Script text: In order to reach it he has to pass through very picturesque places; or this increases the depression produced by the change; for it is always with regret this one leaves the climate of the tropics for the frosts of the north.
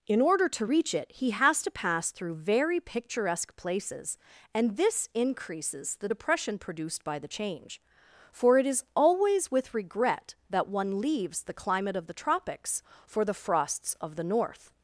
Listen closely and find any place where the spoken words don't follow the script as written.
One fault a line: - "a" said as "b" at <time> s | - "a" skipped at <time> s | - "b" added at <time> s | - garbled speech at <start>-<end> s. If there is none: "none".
- "or" said as "and" at 4.5 s
- "this" said as "that" at 10.5 s